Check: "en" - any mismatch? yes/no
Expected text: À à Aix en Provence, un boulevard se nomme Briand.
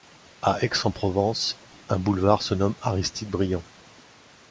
no